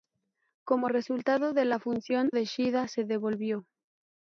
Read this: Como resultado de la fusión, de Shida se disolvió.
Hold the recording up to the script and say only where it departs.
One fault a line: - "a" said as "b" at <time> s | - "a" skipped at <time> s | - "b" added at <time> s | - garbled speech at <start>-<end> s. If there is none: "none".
none